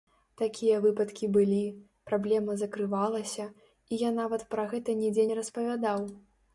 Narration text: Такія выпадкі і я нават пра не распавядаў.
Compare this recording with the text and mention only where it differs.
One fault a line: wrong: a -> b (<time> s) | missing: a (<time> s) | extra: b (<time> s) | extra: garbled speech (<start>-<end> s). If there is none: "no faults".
extra: былі праблема закрывалася (1.4 s)
extra: гэта нідзе (4.8 s)